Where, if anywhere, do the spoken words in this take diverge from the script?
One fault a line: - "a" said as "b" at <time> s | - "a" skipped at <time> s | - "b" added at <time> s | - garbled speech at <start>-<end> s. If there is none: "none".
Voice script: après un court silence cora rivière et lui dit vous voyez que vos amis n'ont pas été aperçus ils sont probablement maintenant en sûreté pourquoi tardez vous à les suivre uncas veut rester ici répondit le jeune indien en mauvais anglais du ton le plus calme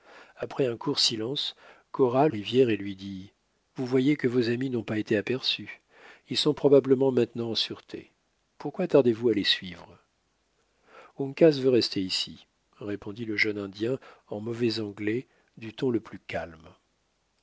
none